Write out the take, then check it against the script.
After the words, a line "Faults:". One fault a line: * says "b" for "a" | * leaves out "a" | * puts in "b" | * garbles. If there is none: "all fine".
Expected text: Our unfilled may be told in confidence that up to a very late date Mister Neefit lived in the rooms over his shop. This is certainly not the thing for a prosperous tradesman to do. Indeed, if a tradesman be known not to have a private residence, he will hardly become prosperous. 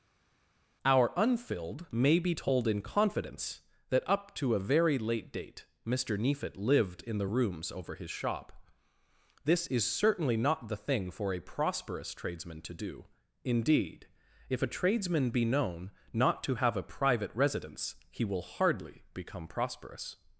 Our unfilled may be told in confidence that up to a very late date Mister Neefit lived in the rooms over his shop. This is certainly not the thing for a prosperous tradesman to do. Indeed, if a tradesman be known not to have a private residence, he will hardly become prosperous.
Faults:
all fine